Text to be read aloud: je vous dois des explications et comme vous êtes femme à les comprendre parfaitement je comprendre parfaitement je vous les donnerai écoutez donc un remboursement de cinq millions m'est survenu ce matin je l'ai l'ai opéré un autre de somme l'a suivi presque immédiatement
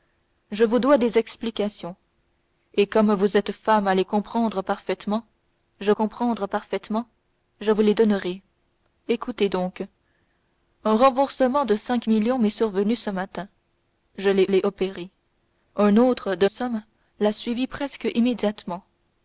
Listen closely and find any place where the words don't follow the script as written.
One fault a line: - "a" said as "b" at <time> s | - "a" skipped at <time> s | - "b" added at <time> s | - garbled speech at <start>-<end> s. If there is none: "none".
none